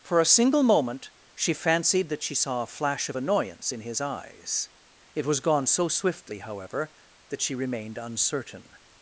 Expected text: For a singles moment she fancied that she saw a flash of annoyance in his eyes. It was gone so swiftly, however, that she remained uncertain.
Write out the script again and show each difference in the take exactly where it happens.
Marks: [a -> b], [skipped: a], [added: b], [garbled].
For a [singles -> single] moment she fancied that she saw a flash of annoyance in his eyes. It was gone so swiftly, however, that she remained uncertain.